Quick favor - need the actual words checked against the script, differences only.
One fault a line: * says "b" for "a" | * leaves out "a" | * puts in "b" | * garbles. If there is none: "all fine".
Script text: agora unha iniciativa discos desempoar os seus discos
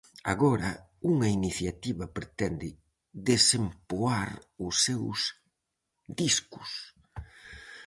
* says "pretende" for "discos"